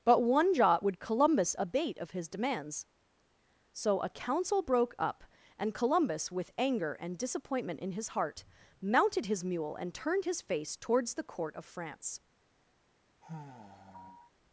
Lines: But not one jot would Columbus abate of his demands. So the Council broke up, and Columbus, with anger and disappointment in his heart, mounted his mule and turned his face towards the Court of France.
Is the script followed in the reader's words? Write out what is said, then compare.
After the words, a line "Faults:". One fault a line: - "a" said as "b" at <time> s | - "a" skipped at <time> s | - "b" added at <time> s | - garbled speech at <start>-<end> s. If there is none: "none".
But one jot would Columbus abate of his demands. So a Council broke up, and Columbus, with anger and disappointment in his heart, mounted his mule and turned his face towards the Court of France.
Faults:
- "not" skipped at 0.2 s
- "the" said as "a" at 4.0 s